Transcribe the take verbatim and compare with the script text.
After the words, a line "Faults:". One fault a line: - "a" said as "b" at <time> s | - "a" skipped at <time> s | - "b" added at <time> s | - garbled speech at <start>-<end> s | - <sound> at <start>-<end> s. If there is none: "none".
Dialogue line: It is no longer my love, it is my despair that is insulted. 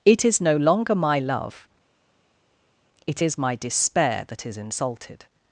It is no longer my love, it is my despair that is insulted.
Faults:
none